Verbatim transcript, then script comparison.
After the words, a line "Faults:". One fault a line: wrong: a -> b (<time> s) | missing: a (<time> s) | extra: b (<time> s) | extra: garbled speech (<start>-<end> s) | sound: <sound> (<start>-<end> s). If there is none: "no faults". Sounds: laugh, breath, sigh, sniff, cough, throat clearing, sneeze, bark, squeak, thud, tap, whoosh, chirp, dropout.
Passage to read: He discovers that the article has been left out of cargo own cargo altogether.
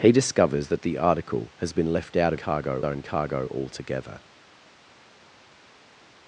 He discovers that the article has been left out of cargo own cargo altogether.
Faults:
no faults